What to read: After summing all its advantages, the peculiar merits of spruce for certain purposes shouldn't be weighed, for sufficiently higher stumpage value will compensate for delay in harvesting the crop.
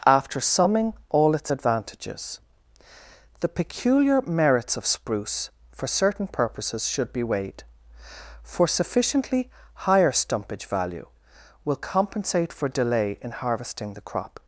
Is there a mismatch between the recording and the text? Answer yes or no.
yes